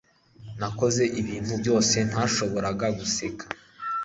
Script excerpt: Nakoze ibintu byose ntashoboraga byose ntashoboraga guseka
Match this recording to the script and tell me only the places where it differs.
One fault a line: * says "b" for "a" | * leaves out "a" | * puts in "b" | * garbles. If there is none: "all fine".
* leaves out "byose ntashoboraga"